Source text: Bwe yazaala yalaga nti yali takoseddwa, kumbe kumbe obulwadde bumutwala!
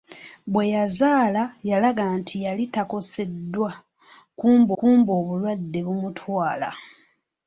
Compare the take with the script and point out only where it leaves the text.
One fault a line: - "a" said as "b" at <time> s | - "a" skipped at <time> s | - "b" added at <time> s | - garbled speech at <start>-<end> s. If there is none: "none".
none